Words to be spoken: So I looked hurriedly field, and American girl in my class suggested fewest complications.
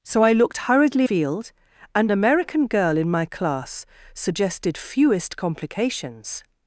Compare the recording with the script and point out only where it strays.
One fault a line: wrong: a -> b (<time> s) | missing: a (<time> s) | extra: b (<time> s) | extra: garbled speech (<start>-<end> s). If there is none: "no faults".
no faults